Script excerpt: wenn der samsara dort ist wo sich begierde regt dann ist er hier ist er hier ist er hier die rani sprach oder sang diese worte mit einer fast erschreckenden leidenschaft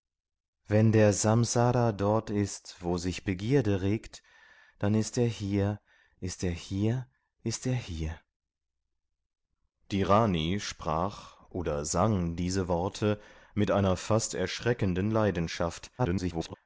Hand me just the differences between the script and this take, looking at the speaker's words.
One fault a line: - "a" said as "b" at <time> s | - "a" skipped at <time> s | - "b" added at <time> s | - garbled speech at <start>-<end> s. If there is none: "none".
- garbled speech at 16.0-16.6 s